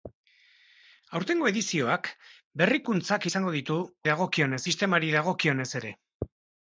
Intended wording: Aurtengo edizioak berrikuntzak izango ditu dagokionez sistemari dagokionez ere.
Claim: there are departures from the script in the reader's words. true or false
false